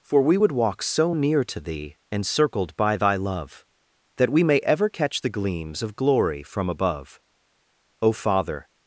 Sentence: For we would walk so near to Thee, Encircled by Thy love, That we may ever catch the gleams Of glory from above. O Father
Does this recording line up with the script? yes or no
yes